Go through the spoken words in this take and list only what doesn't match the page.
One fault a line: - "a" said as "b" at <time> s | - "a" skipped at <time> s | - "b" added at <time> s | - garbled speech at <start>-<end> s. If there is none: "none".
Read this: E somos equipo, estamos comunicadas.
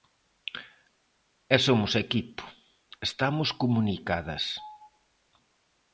none